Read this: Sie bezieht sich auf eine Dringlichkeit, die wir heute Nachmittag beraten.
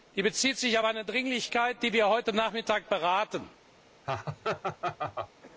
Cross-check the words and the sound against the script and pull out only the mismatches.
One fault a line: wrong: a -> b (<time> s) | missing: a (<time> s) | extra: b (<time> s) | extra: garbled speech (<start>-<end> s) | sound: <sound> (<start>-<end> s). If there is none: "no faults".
sound: laugh (4.0-5.3 s)